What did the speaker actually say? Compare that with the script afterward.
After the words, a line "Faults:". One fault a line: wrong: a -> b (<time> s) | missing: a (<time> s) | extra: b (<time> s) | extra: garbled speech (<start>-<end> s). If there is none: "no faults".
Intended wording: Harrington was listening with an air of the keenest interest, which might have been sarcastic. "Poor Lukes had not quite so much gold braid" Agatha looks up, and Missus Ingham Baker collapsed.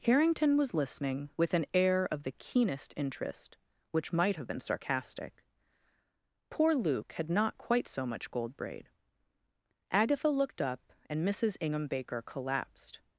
Harrington was listening with an air of the keenest interest, which might have been sarcastic. "Poor Luke had not quite so much gold braid" Agatha looked up, and Missus Ingham Baker collapsed.
Faults:
wrong: Lukes -> Luke (6.7 s)
wrong: looks -> looked (10.3 s)